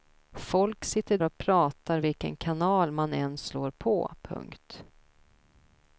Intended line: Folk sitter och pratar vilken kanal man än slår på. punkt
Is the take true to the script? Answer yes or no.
yes